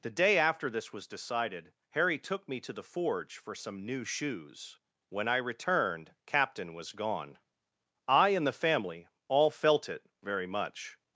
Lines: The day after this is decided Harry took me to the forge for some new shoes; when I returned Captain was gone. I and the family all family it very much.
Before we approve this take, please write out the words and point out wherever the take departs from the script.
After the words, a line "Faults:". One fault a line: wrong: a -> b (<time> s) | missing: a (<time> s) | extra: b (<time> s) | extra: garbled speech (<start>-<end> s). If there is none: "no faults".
The day after this was decided Harry took me to the forge for some new shoes; when I returned Captain was gone. I and the family all felt it very much.
Faults:
wrong: is -> was (0.9 s)
wrong: family -> felt (9.5 s)